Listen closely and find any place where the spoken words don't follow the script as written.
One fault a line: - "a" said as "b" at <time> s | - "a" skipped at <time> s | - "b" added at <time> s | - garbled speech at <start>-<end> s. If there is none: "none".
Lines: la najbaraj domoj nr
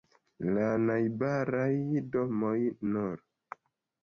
none